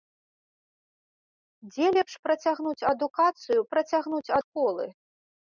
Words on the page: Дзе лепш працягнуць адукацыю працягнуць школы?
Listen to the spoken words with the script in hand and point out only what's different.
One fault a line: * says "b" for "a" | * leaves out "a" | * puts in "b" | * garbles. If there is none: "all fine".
all fine